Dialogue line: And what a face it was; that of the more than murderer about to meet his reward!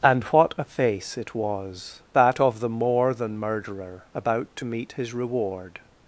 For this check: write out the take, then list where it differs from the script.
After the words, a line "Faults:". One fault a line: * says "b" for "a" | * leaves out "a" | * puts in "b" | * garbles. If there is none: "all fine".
And what a face it was; that of the more than murderer about to meet his reward!
Faults:
all fine